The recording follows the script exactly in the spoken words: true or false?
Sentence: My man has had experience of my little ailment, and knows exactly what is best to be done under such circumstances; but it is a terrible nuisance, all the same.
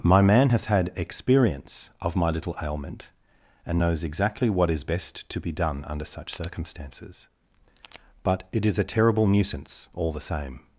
true